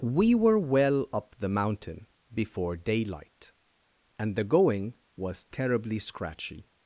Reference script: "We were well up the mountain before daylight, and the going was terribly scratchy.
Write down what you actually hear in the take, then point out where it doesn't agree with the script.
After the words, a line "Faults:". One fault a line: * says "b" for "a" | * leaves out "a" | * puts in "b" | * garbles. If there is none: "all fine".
"We were well up the mountain before daylight, and the going was terribly scratchy.
Faults:
all fine